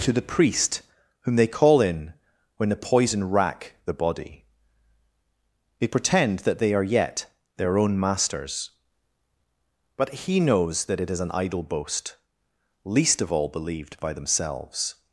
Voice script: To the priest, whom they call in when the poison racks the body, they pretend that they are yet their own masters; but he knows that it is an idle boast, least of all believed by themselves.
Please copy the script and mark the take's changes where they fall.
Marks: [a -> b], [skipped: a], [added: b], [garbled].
To the priest, whom they call in when the poison [racks -> rack] the body, they pretend that they are yet their own masters; but he knows that it is an idle boast, least of all believed by themselves.